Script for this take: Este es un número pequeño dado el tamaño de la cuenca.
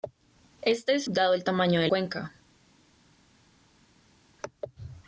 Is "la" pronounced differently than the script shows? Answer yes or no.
yes